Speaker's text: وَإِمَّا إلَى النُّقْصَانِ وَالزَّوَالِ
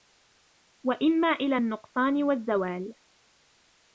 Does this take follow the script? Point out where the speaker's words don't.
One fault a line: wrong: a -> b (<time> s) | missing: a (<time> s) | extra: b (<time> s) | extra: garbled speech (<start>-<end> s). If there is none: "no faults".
no faults